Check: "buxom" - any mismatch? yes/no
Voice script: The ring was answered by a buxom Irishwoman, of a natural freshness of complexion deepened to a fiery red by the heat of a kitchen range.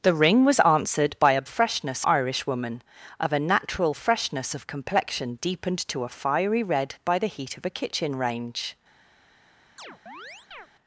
yes